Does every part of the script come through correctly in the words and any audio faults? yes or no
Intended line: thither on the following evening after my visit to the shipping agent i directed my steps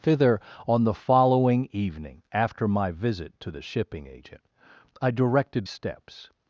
no